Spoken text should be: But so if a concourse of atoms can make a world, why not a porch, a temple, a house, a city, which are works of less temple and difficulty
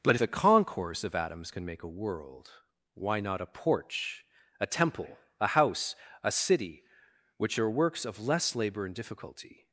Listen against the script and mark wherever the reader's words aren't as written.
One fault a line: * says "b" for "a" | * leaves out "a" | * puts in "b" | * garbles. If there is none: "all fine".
* leaves out "so"
* says "labor" for "temple"